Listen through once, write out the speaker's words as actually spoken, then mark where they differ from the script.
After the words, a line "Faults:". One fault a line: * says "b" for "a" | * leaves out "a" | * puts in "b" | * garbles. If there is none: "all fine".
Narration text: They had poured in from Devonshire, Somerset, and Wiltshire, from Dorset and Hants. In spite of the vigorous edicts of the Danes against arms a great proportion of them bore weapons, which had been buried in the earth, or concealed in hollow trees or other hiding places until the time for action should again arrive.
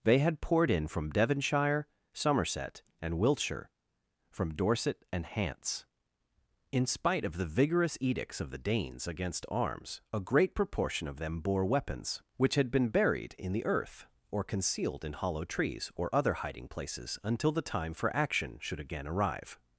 They had poured in from Devonshire, Somerset, and Wiltshire, from Dorset and Hants. In spite of the vigorous edicts of the Danes against arms a great proportion of them bore weapons, which had been buried in the earth, or concealed in hollow trees or other hiding places until the time for action should again arrive.
Faults:
all fine